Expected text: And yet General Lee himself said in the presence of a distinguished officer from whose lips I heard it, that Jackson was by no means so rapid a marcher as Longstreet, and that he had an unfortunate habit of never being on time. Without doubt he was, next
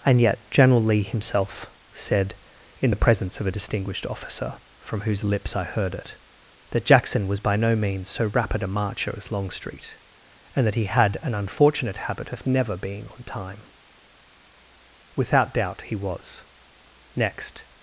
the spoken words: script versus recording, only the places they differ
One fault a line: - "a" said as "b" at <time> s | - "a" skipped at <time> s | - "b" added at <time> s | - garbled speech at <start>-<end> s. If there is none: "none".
none